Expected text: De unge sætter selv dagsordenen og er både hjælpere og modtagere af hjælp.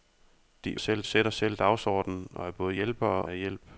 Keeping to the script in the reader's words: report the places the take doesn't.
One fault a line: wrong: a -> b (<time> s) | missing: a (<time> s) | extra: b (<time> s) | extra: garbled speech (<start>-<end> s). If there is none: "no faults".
wrong: unge -> selv (0.8 s)
missing: og modtagere (3.2 s)